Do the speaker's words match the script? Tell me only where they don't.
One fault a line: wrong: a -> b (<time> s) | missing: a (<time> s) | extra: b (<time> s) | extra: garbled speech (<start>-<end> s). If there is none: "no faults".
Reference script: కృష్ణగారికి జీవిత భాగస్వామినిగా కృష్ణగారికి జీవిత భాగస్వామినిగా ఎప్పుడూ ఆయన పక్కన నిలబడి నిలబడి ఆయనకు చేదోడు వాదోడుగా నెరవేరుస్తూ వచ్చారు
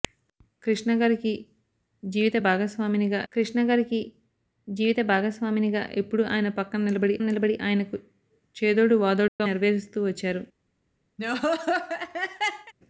no faults